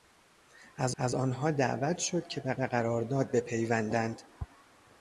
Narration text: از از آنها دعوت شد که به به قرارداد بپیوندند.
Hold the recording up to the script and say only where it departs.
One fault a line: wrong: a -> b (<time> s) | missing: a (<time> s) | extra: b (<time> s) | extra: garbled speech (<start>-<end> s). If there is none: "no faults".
no faults